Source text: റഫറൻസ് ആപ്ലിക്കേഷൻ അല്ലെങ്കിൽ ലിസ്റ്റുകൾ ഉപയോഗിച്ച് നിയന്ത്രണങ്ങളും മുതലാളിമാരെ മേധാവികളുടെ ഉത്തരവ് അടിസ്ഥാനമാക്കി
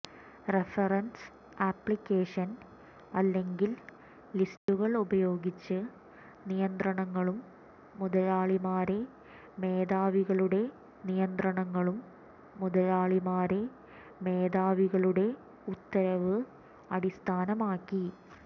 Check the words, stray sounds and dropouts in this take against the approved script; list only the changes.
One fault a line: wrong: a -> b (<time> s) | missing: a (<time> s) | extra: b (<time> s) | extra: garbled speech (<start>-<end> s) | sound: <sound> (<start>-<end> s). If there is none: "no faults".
sound: dropout (4.6-4.7 s)
extra: നിയന്ത്രണങ്ങളും മുതലാളിമാരെ മേധാവികളുടെ (11.1 s)